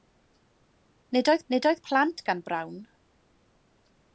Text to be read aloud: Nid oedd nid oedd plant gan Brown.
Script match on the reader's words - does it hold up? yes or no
yes